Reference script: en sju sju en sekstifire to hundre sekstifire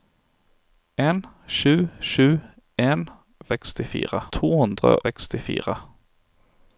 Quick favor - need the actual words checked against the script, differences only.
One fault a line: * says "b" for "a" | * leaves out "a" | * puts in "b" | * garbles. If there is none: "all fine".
all fine